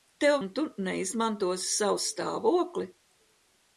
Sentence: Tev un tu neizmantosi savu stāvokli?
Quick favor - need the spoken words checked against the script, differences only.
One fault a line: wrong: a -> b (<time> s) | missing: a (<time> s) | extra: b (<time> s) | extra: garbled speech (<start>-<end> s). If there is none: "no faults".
no faults